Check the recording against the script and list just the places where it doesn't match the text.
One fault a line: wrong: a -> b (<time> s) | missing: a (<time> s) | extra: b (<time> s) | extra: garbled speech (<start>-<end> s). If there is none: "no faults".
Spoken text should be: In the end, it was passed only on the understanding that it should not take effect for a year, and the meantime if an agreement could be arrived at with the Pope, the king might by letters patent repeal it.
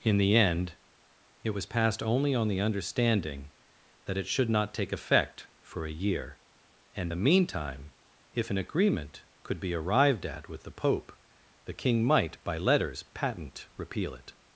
no faults